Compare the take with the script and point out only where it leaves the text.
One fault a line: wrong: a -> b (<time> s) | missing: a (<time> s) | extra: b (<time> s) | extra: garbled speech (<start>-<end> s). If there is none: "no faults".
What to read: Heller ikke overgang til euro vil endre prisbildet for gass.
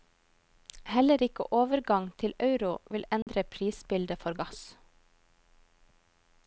no faults